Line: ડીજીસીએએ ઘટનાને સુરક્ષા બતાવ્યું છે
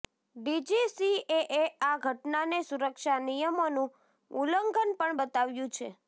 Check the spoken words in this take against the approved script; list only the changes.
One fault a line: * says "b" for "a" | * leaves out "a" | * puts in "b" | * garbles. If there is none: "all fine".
* puts in "આ"
* puts in "નિયમોનું ઉલ્લંઘન પણ"